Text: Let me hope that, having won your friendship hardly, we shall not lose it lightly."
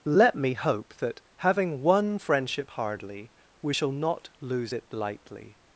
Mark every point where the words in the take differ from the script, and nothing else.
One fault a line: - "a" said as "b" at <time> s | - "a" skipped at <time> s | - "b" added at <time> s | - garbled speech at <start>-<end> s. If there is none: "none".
- "your" skipped at 2.2 s